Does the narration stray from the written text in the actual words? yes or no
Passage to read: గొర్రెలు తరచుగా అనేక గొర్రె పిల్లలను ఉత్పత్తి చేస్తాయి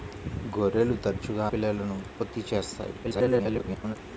yes